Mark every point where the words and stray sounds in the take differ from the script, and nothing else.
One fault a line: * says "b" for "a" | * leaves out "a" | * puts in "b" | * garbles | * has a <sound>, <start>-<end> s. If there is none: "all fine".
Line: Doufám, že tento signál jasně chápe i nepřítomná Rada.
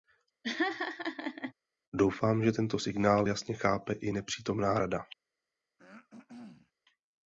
* has a laugh, 0.4-1.5 s
* has a throat clearing, 5.8-6.7 s